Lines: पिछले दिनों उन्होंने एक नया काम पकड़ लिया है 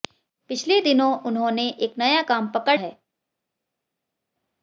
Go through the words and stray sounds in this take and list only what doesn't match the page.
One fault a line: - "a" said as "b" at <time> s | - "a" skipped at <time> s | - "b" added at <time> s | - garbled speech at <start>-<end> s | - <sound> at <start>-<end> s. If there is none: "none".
- "लिया" skipped at 2.8 s